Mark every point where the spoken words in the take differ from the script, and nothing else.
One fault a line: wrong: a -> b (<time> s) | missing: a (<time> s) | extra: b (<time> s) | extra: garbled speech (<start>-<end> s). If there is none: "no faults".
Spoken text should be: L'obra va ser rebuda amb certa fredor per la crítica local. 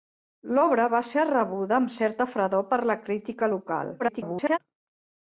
extra: garbled speech (4.0-4.6 s)